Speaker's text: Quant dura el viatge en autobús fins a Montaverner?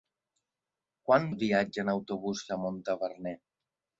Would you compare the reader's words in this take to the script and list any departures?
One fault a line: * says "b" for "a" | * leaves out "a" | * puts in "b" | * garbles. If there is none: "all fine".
* leaves out "dura"
* leaves out "fins"